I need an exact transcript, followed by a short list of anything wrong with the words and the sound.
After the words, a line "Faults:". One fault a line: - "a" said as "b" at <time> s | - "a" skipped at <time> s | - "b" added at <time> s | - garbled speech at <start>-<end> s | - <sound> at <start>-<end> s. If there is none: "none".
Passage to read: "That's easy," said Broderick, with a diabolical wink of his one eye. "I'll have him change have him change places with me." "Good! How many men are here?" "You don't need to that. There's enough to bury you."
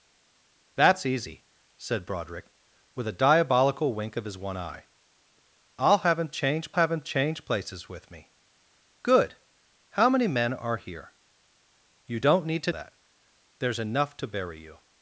"That's easy," said Broderick, with a diabolical wink of his one eye. "I'll have him change have him change places with me." "Good! How many men are here?" "You don't need to that. There's enough to bury you."
Faults:
none